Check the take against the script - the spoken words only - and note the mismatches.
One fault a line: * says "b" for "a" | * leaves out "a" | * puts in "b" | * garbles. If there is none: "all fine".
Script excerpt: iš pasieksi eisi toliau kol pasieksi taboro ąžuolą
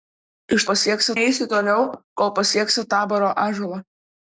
all fine